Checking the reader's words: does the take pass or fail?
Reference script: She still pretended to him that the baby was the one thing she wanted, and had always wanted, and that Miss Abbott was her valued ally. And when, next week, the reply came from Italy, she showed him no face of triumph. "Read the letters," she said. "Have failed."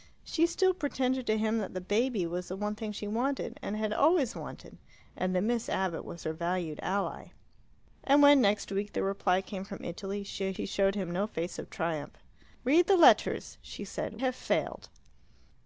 pass